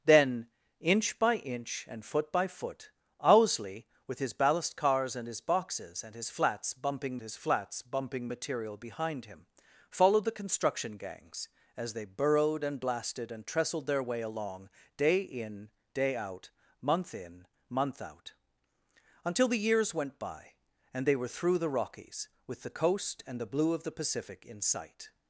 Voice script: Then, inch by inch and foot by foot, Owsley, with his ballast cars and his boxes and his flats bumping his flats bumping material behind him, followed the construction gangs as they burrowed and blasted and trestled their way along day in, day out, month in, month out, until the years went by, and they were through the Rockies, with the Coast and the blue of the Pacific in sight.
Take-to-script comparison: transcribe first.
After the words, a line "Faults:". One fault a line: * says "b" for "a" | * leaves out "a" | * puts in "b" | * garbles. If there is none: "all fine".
Then, inch by inch and foot by foot, Owsley, with his ballast cars and his boxes and his flats bumping his flats bumping material behind him, followed the construction gangs as they burrowed and blasted and trestled their way along day in, day out, month in, month out, until the years went by, and they were through the Rockies, with the Coast and the blue of the Pacific in sight.
Faults:
all fine